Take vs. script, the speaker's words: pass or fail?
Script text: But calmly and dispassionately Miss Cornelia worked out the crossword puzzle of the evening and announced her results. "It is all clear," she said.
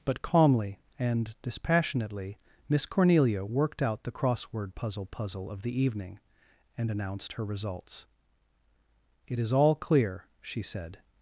fail